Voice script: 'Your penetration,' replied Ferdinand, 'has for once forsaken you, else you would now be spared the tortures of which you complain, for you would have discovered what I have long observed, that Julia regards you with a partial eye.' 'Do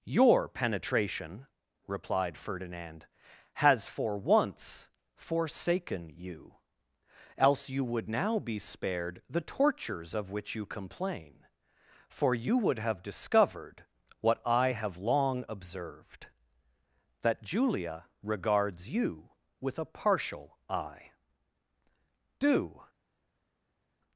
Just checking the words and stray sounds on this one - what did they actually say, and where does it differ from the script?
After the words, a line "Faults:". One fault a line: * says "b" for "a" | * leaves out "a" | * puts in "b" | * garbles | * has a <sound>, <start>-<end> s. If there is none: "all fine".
'Your penetration,' replied Ferdinand, 'has for once forsaken you, else you would now be spared the tortures of which you complain, for you would have discovered what I have long observed, that Julia regards you with a partial eye.' 'Do
Faults:
all fine